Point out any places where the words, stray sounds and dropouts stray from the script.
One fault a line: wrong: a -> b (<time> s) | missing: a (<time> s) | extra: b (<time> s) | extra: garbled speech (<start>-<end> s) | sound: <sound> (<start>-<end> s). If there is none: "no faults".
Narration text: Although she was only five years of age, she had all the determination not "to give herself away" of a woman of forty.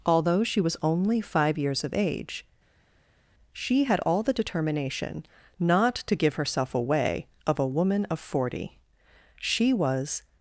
extra: She was (9.4 s)